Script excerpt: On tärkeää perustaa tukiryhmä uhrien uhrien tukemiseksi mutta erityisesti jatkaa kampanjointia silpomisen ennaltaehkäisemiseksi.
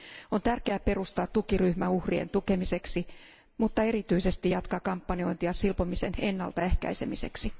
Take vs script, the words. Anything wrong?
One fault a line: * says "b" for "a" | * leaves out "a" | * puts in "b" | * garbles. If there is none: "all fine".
* leaves out "uhrien"